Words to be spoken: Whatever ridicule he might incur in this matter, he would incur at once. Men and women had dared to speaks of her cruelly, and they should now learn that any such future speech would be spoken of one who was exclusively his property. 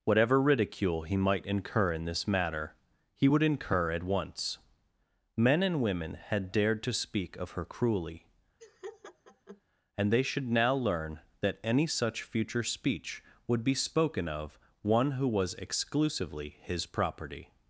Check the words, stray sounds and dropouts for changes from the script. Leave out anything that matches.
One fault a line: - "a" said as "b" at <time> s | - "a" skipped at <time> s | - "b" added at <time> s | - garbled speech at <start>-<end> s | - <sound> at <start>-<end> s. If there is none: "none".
- "speaks" said as "speak" at 6.9 s
- laugh at 8.6-9.6 s